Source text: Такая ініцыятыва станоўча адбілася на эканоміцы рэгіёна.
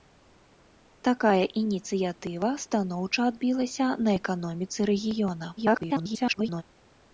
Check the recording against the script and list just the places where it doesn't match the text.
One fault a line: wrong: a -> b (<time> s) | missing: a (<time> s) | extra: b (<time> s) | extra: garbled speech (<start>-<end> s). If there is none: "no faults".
extra: garbled speech (5.6-6.6 s)